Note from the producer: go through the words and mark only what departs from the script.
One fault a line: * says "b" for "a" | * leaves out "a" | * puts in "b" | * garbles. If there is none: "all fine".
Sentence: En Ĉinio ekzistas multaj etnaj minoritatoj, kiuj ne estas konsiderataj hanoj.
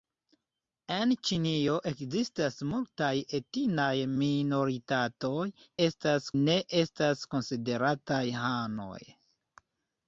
* says "estas" for "kiuj"